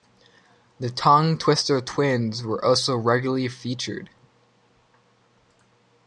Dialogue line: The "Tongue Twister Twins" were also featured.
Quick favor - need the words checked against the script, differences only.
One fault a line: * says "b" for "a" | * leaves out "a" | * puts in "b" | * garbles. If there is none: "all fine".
* puts in "regularly"